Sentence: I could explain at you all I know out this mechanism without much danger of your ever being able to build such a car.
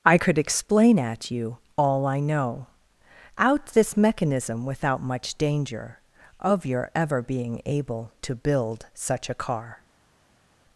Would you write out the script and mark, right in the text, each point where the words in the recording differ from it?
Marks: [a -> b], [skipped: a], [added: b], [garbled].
I could explain at you all I know out this mechanism without much danger of your ever being able to build such a car.